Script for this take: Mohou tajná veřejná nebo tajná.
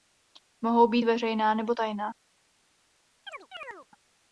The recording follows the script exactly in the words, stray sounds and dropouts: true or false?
false